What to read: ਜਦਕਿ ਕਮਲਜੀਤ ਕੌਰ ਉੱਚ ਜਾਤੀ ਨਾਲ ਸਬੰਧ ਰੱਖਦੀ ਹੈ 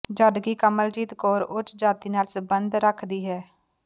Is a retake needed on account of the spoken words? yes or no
no